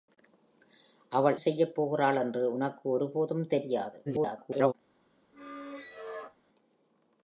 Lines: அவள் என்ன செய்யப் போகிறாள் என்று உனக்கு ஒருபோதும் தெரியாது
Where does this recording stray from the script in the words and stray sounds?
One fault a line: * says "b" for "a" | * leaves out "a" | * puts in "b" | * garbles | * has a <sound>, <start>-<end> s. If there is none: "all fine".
* leaves out "என்ன"
* garbles
* has a squeak, 5.3-6.4 s